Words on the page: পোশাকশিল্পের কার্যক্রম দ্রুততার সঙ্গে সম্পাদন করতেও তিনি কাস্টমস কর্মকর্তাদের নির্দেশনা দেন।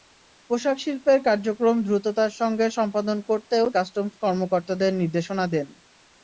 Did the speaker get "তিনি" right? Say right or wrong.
wrong